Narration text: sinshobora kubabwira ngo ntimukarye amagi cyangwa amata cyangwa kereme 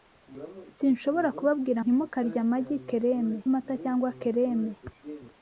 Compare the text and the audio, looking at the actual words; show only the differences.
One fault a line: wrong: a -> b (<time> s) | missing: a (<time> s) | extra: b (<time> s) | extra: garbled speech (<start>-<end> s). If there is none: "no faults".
missing: ngo (1.8 s)
wrong: cyangwa -> kereme (2.9 s)